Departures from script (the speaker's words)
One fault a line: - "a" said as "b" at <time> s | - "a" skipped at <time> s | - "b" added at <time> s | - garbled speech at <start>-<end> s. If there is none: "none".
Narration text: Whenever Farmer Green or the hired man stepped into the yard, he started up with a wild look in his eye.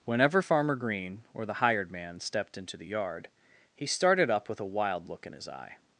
none